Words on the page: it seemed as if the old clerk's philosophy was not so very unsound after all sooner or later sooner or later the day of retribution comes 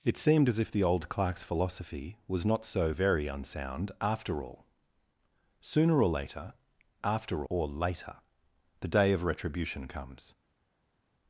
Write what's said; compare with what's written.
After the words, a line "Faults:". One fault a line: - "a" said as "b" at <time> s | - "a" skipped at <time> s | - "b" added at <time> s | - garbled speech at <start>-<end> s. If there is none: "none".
it seemed as if the old clerk's philosophy was not so very unsound after all sooner or later after or later the day of retribution comes
Faults:
- "sooner" said as "after" at 7.0 s